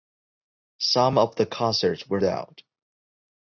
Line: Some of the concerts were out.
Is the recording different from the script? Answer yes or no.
no